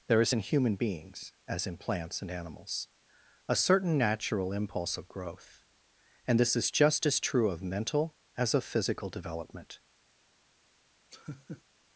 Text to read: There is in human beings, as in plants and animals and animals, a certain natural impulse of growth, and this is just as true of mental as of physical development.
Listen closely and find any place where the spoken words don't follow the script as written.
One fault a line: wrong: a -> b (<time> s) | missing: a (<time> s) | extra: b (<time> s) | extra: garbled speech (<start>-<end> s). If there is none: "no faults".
missing: and animals (2.9 s)